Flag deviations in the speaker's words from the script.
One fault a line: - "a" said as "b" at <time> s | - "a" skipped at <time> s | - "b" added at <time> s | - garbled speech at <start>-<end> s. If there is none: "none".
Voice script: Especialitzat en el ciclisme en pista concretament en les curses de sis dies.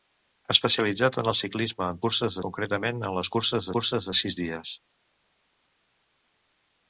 - "pista" said as "curses" at 2.1 s
- "curses" added at 3.8 s